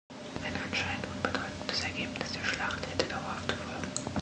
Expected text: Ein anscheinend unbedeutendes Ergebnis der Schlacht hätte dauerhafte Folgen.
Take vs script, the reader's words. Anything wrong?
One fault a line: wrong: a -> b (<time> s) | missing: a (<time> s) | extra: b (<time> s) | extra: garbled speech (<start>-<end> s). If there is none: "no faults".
no faults